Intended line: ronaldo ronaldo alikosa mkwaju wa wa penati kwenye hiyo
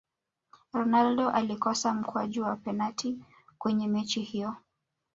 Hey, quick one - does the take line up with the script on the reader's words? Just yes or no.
no